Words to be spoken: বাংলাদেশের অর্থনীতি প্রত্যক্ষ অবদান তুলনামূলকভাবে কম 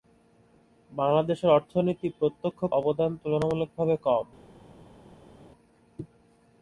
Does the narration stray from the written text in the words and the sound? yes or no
no